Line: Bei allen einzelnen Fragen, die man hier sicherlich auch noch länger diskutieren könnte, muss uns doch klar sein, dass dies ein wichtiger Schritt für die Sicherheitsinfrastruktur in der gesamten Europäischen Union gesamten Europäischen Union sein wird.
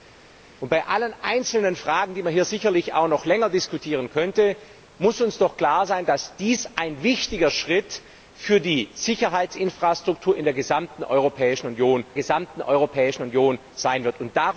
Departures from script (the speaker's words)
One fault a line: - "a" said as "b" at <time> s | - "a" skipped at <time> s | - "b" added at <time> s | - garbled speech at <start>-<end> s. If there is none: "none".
none